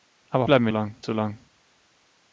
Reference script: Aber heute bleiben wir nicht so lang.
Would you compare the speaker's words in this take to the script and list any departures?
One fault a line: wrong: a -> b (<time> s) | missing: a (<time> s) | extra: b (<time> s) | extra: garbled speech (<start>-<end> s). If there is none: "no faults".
missing: heute (0.5 s)
wrong: nicht -> lang (0.7 s)